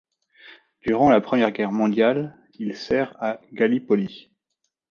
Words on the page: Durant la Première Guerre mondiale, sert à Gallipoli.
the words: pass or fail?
fail